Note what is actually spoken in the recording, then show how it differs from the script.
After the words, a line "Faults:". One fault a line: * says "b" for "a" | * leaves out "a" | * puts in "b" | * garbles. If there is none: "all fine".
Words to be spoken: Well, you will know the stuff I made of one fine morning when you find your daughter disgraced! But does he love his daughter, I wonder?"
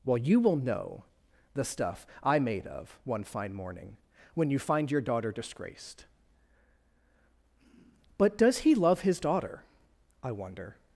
Well, you will know the stuff I made of one fine morning when you find your daughter disgraced! But does he love his daughter, I wonder?"
Faults:
all fine